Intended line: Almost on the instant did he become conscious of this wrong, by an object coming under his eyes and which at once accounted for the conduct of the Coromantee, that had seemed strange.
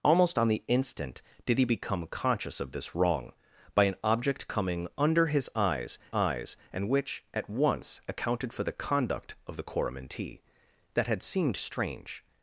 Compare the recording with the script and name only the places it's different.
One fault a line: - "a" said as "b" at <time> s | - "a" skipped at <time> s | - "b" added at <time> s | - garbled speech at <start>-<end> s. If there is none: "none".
- "eyes" added at 6.1 s